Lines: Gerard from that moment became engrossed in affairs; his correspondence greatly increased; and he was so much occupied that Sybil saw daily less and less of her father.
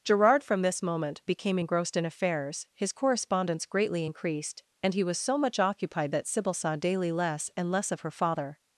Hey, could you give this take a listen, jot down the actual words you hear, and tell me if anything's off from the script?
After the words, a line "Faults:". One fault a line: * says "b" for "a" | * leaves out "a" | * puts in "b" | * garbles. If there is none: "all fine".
Gerard from this moment became engrossed in affairs; his correspondence greatly increased; and he was so much occupied that Sybil saw daily less and less of her father.
Faults:
* says "this" for "that"